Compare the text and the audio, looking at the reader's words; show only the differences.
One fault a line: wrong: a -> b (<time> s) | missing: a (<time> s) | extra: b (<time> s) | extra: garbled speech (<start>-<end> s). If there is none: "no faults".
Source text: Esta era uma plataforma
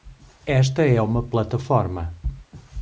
wrong: era -> é (0.8 s)